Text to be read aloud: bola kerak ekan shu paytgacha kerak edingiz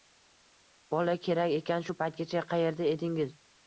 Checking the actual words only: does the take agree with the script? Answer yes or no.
no